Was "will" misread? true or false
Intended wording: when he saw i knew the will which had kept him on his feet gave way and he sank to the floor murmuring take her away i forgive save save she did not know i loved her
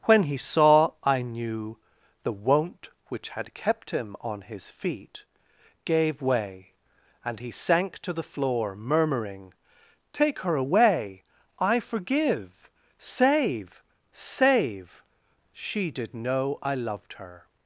true